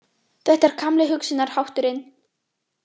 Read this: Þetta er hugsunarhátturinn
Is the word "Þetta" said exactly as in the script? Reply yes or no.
yes